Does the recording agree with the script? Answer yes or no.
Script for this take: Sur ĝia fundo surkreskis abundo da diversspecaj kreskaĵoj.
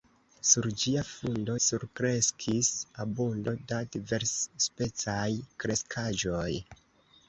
yes